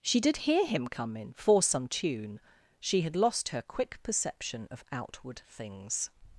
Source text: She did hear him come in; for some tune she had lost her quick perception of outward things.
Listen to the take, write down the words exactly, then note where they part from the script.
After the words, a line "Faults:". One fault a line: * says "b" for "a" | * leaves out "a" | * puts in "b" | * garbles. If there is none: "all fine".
She did hear him come in; for some tune she had lost her quick perception of outward things.
Faults:
all fine